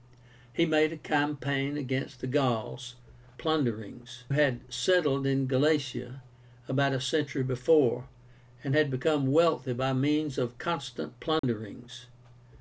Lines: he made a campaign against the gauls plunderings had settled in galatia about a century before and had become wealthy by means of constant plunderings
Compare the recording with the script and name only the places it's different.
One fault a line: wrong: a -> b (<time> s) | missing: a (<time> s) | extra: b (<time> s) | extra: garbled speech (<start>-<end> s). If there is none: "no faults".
no faults